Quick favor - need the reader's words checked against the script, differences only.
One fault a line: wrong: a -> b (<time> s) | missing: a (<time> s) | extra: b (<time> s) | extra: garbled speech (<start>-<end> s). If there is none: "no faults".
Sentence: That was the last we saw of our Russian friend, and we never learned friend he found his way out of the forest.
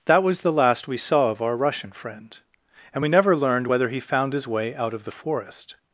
wrong: friend -> whether (3.6 s)